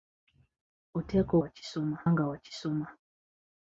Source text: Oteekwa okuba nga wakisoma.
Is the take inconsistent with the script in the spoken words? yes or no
yes